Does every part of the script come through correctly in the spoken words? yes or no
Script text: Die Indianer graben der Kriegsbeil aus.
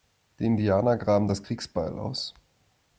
no